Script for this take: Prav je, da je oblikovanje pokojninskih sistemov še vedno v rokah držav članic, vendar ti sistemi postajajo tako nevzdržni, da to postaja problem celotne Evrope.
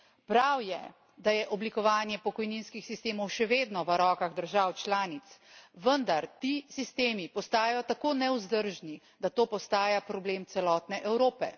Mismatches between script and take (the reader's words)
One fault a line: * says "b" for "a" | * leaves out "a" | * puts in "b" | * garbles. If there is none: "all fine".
all fine